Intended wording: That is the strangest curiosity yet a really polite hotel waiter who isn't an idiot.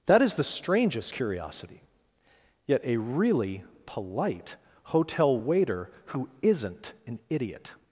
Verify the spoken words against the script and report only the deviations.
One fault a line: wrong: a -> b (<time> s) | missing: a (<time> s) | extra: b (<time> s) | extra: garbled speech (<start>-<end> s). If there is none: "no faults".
no faults